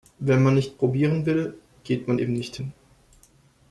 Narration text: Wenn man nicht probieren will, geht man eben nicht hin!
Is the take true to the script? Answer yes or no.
yes